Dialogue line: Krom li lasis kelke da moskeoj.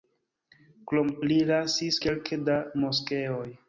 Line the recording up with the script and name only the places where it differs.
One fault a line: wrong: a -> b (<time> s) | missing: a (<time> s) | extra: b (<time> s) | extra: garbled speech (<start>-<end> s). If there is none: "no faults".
no faults